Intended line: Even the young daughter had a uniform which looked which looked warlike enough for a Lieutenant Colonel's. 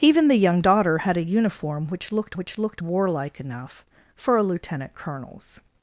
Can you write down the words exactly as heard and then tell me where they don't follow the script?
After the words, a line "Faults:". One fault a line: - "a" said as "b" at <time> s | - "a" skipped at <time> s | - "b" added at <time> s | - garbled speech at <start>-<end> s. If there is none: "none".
Even the young daughter had a uniform which looked which looked warlike enough for a Lieutenant Colonel's.
Faults:
none